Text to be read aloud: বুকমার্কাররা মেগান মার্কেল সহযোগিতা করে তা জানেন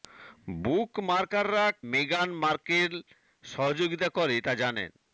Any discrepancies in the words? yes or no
no